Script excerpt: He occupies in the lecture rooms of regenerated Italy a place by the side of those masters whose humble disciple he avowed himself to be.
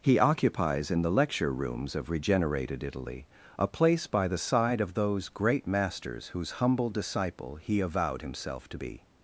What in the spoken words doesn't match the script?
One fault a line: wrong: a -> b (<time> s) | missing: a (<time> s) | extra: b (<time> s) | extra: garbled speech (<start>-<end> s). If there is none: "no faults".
extra: great (5.3 s)